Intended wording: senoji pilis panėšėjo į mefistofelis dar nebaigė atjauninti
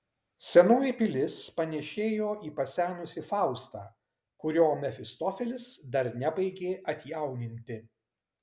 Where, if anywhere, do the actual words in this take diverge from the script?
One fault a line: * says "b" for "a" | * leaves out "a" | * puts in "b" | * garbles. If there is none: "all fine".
* puts in "pasenusį faustą kurio"